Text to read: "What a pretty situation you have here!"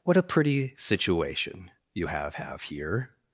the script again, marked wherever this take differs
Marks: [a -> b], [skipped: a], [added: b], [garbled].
"What a pretty situation you have [added: have] here!"